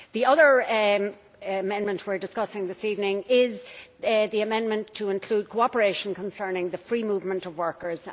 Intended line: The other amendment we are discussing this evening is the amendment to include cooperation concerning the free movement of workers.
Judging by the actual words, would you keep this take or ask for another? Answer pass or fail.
pass